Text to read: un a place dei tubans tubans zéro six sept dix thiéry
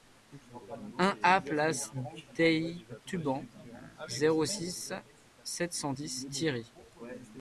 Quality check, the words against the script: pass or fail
fail